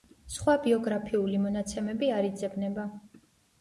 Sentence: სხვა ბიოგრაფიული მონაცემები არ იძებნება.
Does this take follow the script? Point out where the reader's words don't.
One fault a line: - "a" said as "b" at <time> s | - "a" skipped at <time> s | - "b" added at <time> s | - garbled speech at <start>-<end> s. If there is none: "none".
none